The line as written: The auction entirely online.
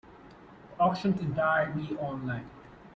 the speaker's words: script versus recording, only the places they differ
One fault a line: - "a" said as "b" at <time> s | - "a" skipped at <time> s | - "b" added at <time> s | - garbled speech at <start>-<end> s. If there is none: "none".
none